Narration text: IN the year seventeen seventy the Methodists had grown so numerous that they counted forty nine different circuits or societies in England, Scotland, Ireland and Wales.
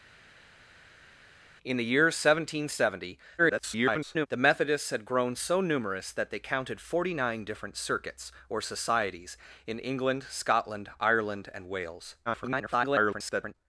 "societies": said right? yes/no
yes